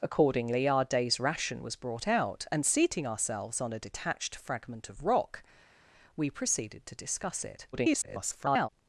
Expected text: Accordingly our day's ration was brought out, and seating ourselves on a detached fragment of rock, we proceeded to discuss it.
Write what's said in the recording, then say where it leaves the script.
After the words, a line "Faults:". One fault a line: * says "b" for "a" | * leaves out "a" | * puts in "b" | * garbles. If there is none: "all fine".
Accordingly our day's ration was brought out, and seating ourselves on a detached fragment of rock, we proceeded to discuss it. [garbled]
Faults:
* garbles